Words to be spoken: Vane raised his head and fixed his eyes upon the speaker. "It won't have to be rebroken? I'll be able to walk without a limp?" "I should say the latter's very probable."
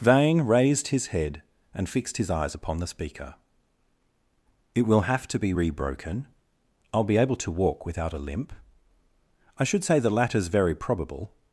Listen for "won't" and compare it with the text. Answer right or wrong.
wrong